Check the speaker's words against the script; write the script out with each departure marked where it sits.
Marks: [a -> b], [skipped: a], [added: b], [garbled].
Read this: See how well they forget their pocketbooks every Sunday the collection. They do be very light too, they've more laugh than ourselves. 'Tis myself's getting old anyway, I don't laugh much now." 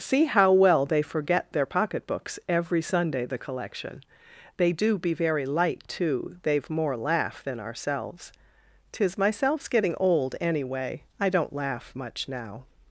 See how well they forget their pocketbooks every Sunday the collection. They do be very light too, they've more laugh than ourselves. 'Tis myself's getting old anyway, I don't laugh much now."